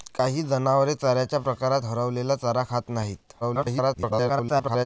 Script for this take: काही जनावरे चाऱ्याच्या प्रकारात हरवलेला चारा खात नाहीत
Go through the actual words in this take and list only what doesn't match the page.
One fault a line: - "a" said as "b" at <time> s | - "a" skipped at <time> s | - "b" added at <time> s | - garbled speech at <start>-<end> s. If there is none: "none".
- garbled speech at 3.4-4.9 s